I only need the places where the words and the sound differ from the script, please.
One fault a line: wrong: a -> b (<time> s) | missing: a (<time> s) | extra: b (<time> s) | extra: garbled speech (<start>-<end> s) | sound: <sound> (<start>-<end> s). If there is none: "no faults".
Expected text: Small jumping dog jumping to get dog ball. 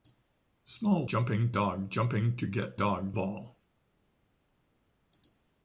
no faults